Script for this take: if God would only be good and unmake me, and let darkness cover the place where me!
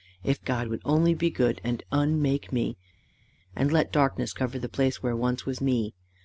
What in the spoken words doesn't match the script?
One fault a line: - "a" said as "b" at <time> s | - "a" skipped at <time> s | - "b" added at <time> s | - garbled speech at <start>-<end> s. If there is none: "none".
- "once was" added at 5.1 s